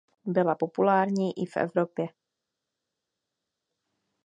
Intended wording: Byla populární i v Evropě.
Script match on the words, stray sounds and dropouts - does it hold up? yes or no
yes